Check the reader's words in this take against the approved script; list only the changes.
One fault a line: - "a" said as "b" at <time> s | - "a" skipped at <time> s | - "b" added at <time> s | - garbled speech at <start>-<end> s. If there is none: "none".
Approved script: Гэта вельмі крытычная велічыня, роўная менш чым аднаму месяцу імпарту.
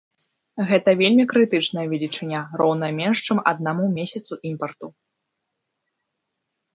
none